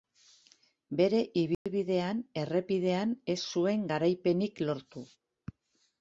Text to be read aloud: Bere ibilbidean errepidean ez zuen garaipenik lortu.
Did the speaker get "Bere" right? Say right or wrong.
right